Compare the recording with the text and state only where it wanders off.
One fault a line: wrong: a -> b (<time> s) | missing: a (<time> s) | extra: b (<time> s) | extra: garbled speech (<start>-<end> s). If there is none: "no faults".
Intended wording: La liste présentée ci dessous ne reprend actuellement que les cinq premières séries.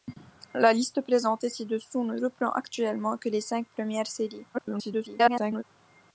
extra: garbled speech (4.5-5.6 s)